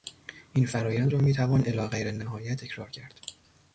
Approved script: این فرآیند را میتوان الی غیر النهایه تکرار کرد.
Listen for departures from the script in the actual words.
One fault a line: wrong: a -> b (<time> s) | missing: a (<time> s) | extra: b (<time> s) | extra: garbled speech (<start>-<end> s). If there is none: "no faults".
no faults